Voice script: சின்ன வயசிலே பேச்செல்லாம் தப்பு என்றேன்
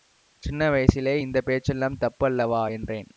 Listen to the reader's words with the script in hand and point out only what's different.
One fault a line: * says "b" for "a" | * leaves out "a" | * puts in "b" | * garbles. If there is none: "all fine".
* puts in "இந்த"
* puts in "அல்லவா"